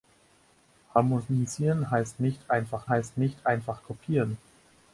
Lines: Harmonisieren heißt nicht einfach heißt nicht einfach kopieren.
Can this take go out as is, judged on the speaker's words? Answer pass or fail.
pass